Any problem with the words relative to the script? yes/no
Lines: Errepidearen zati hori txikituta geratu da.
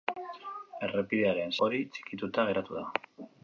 yes